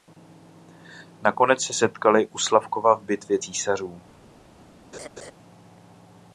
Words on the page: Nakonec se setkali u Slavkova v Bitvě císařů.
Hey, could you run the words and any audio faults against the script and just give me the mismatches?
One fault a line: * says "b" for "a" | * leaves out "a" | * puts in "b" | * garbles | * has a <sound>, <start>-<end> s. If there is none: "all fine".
* has a laugh, 4.9-5.3 s